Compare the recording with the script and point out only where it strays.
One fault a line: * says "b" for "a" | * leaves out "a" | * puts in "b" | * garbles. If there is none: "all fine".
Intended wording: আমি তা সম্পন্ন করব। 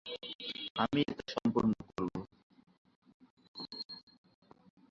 all fine